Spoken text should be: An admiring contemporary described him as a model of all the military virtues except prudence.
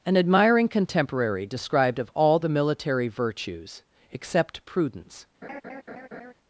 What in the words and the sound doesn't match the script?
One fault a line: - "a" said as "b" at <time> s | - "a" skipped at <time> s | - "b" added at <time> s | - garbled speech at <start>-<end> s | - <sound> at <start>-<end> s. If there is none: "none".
- "him as a model" skipped at 2.0 s
- laugh at 5.4-6.3 s